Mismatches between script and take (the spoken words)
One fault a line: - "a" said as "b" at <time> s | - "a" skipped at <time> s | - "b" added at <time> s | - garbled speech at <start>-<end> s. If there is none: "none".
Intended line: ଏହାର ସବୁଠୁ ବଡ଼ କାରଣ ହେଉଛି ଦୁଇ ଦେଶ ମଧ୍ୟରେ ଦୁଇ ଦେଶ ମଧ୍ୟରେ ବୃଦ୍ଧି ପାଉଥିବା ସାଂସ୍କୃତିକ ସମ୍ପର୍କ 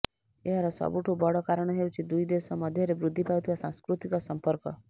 - "ଦୁଇ ଦେଶ ମଧ୍ୟରେ" skipped at 3.0 s